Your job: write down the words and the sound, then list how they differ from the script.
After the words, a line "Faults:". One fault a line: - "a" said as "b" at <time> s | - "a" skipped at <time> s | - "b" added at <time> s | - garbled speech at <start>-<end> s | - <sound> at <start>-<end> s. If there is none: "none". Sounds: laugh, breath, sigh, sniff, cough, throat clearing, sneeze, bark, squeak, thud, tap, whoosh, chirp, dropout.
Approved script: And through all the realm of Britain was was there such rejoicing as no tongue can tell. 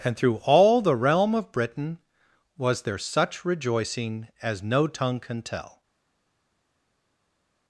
And through all the realm of Britain was there such rejoicing as no tongue can tell.
Faults:
- "was" skipped at 2.8 s